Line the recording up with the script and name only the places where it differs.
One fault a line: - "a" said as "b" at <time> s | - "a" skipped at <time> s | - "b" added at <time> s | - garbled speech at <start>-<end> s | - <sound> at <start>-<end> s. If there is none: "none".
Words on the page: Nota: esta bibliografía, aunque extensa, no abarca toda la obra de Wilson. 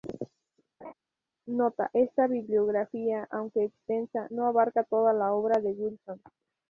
- laugh at 0.8-0.9 s